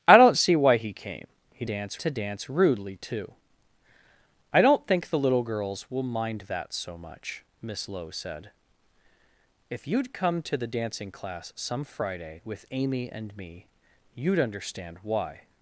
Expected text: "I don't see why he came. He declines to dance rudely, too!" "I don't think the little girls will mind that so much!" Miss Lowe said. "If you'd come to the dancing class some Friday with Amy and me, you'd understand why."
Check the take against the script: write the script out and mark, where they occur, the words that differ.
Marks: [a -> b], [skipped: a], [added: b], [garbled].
"I don't see why he came. He [declines -> dance] to dance rudely, too!" "I don't think the little girls will mind that so much!" Miss Lowe said. "If you'd come to the dancing class some Friday with Amy and me, you'd understand why."